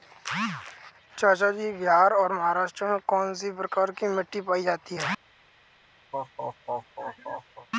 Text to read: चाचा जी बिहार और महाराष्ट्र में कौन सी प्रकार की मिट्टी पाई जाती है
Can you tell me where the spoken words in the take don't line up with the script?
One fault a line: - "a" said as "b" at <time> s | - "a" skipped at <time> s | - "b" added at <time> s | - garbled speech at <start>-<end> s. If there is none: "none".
none